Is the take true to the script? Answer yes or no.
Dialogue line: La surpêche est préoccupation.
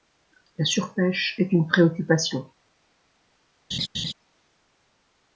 no